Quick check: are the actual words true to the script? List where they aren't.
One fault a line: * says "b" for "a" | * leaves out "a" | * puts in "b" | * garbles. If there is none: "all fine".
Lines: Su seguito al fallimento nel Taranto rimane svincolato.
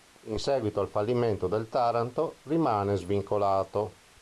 * says "In" for "Su"
* says "del" for "nel"